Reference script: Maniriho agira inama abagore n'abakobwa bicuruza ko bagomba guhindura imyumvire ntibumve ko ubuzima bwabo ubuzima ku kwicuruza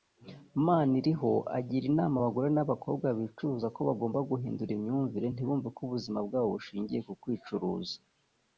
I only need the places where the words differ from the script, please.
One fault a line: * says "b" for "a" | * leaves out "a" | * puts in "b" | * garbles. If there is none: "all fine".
* says "bushingiye" for "ubuzima"